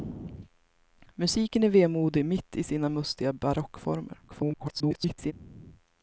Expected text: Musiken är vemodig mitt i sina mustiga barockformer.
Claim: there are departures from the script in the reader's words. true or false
true